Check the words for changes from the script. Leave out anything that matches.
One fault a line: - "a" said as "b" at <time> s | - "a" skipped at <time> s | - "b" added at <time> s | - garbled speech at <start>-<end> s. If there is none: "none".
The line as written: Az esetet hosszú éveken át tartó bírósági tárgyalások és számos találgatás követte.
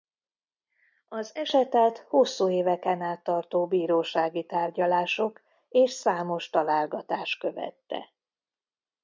none